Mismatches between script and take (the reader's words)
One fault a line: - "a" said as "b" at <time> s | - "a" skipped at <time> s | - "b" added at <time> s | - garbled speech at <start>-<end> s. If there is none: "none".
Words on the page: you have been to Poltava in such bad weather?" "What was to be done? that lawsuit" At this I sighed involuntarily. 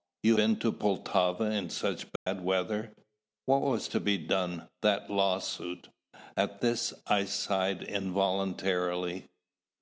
- "have" skipped at 0.4 s